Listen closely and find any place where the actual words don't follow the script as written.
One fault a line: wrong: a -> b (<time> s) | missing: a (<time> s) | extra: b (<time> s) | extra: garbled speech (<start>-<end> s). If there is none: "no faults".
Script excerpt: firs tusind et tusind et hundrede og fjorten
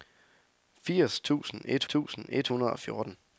no faults